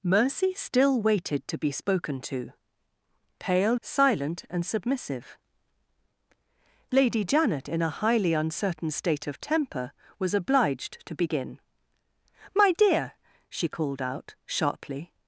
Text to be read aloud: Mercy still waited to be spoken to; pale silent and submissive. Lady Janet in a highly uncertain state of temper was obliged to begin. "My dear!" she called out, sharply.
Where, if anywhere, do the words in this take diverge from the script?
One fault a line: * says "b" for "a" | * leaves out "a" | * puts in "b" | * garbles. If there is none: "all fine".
all fine